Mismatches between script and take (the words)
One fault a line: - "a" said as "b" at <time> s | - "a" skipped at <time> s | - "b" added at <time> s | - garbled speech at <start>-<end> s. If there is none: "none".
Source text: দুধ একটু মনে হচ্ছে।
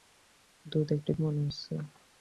none